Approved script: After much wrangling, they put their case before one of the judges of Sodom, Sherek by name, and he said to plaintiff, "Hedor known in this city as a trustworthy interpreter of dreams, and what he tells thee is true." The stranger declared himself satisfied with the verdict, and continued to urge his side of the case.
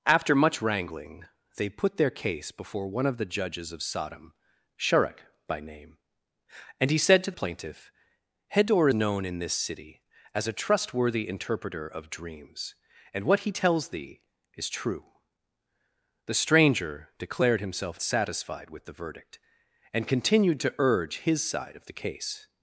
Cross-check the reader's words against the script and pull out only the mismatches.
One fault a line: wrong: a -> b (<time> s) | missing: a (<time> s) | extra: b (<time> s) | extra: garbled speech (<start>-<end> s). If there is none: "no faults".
no faults